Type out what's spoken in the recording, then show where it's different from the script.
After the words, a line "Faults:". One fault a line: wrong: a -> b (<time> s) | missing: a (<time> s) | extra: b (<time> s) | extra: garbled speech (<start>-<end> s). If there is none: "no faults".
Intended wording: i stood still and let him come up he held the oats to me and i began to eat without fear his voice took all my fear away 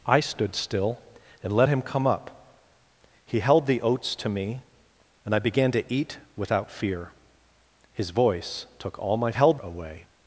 i stood still and let him come up he held the oats to me and i began to eat without fear his voice took all my held away
Faults:
wrong: fear -> held (9.3 s)